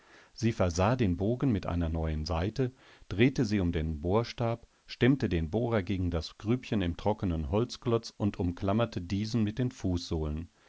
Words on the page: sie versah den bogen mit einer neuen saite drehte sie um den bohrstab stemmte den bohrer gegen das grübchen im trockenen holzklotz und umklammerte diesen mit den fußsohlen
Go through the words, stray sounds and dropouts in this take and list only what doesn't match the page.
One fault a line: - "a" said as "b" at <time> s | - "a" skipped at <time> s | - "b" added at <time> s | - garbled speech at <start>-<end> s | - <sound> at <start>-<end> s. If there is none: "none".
none